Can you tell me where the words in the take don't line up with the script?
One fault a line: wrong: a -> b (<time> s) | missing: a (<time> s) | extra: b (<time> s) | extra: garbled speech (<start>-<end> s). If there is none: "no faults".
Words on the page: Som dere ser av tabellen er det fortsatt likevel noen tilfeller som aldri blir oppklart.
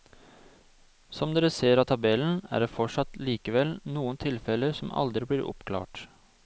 no faults